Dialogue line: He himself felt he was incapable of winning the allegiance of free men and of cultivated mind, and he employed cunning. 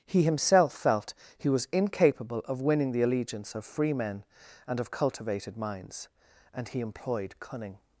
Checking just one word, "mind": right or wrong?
wrong